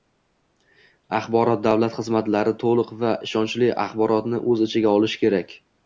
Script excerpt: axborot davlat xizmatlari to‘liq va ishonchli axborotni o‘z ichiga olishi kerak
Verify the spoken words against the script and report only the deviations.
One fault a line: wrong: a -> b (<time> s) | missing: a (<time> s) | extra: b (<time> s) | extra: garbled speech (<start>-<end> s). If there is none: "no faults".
no faults